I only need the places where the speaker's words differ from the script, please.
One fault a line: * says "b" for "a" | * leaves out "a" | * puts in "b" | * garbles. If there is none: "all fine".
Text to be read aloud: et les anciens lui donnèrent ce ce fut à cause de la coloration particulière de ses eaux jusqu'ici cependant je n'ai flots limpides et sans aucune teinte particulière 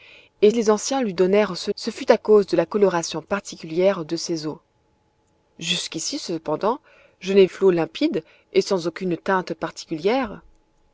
all fine